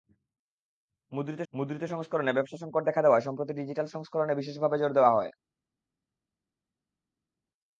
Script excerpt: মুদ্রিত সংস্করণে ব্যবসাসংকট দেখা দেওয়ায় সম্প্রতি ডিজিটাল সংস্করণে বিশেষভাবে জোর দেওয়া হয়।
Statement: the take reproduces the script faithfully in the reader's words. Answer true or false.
false